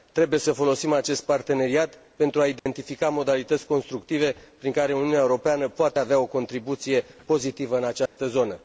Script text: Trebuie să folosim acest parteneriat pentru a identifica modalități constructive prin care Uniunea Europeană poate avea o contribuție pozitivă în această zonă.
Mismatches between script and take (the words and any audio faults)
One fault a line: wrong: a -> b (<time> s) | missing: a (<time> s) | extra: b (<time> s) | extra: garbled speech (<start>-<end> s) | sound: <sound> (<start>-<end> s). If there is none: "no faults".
sound: dropout (2.6-2.7 s)
sound: dropout (8.1-8.2 s)